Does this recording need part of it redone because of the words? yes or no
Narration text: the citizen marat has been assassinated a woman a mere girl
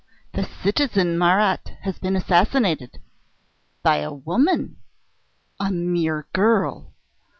yes